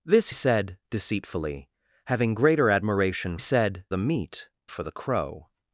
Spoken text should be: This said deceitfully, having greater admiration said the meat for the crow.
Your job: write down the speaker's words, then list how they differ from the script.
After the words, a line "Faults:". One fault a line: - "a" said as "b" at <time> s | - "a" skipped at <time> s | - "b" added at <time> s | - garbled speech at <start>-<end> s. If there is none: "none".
This said deceitfully, having greater admiration said the meat for the crow.
Faults:
none